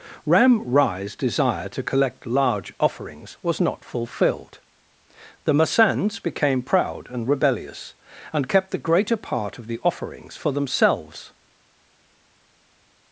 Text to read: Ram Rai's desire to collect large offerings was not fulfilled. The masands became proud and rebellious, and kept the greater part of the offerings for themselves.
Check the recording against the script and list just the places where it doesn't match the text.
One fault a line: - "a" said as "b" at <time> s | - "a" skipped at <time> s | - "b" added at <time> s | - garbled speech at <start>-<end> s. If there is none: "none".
none